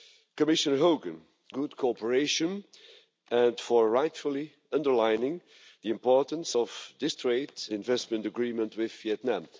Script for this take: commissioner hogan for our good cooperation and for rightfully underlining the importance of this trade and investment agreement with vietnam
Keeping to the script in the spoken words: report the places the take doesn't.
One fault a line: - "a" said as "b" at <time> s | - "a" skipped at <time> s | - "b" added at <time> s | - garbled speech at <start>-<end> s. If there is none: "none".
- "for our" skipped at 1.2 s
- "and" skipped at 7.5 s